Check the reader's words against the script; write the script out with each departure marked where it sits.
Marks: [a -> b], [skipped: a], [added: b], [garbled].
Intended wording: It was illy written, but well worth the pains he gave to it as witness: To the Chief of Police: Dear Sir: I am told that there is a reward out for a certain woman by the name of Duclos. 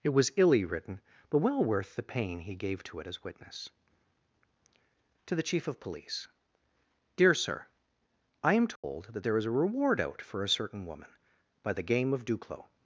It was illy written, but well worth the [pains -> pain] he gave to it as witness: To the Chief of Police: Dear Sir: I am told that there is a reward out for a certain woman by the [name -> game] of Duclos.